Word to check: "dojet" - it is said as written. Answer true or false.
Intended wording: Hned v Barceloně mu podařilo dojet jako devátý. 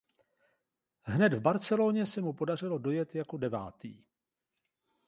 true